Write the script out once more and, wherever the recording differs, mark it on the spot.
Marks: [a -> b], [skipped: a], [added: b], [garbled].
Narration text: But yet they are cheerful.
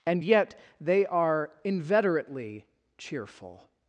[But -> And] yet they are [added: inveterately] cheerful.